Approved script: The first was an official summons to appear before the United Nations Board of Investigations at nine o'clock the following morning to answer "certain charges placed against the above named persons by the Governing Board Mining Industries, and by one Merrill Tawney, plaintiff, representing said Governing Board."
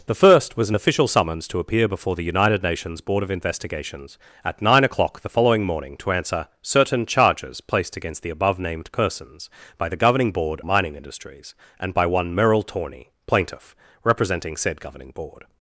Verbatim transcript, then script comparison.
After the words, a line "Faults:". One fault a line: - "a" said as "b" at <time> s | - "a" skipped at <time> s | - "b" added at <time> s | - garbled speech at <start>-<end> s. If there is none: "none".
The first was an official summons to appear before the United Nations Board of Investigations at nine o'clock the following morning to answer "certain charges placed against the above named persons by the Governing Board Mining Industries, and by one Merrill Tawney, plaintiff, representing said Governing Board."
Faults:
none